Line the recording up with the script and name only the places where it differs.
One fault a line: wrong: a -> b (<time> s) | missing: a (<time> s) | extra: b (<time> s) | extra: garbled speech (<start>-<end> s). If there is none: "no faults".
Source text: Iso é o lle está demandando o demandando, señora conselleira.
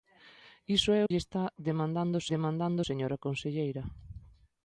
no faults